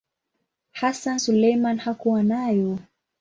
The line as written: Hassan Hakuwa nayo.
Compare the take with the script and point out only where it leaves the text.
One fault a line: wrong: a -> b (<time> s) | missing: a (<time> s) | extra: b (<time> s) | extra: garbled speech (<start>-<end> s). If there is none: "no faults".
extra: Suleiman (1.2 s)